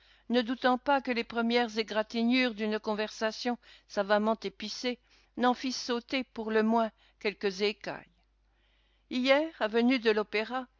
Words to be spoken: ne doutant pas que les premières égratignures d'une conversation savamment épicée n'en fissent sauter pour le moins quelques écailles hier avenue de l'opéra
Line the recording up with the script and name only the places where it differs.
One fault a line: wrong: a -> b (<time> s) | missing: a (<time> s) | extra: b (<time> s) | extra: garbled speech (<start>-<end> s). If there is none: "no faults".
no faults